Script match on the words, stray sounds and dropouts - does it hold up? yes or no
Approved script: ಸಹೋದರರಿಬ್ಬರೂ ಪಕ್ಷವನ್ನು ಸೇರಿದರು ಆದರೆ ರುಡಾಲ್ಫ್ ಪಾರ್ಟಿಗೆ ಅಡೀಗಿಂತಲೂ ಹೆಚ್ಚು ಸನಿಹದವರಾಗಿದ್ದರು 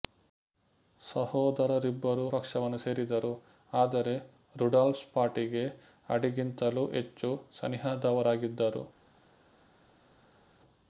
yes